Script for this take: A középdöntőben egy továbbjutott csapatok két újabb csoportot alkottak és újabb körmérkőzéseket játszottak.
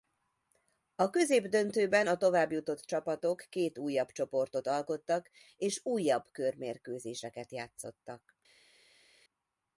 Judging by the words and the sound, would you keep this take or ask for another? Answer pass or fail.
fail